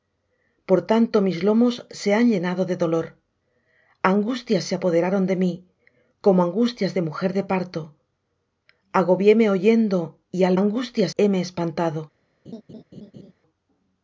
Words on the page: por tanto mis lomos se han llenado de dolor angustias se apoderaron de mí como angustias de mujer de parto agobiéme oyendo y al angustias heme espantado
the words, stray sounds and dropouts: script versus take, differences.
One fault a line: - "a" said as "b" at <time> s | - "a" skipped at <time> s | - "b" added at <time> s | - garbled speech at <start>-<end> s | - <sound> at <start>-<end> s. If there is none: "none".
- laugh at 12.4-13.3 s